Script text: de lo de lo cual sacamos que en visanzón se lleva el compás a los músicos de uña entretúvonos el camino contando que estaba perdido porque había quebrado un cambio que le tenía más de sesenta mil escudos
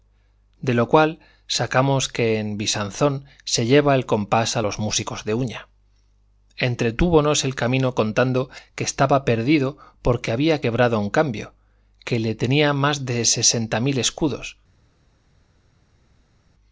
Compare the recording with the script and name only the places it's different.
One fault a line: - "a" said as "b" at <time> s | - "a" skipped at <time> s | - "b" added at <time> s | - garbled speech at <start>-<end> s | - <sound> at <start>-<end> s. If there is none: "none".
- "de lo" skipped at 0.9 s